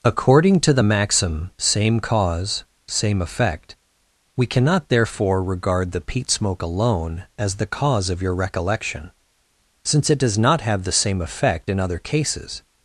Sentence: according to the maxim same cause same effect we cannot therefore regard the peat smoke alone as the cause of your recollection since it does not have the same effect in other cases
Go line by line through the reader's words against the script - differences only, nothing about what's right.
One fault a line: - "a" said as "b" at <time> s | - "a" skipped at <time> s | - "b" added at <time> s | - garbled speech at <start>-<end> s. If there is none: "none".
none